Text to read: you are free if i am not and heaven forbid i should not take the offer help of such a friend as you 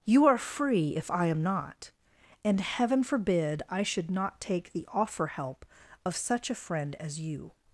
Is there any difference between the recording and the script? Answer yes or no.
no